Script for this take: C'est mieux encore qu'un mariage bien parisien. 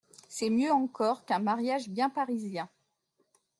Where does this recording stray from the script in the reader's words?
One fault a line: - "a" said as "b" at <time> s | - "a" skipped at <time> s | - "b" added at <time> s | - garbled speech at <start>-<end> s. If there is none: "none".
none